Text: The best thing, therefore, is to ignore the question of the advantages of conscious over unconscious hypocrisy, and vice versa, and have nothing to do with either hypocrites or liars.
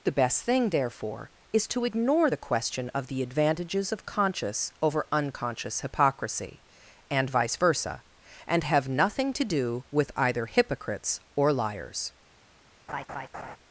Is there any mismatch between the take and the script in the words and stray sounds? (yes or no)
yes